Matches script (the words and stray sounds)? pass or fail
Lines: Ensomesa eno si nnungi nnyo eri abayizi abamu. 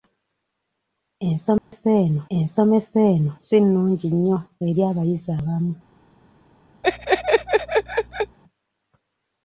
fail